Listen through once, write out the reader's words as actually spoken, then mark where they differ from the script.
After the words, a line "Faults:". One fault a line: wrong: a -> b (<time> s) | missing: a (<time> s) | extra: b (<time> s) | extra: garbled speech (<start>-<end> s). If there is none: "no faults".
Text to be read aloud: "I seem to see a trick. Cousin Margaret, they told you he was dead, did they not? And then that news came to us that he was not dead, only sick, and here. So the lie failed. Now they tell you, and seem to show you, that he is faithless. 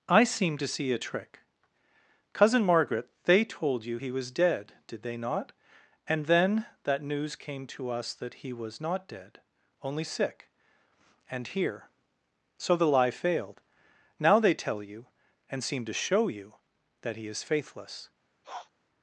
"I seem to see a trick. Cousin Margaret, they told you he was dead, did they not? And then that news came to us that he was not dead, only sick, and here. So the lie failed. Now they tell you, and seem to show you, that he is faithless.
Faults:
no faults